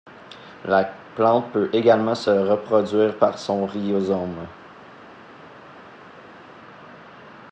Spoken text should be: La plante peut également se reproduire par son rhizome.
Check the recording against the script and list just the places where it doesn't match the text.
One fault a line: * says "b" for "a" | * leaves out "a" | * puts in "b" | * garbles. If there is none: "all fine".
all fine